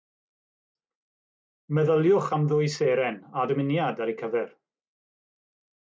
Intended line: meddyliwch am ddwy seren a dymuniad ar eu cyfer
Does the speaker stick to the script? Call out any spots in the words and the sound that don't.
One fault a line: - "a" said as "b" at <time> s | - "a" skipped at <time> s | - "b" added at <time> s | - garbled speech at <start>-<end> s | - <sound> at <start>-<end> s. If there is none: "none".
none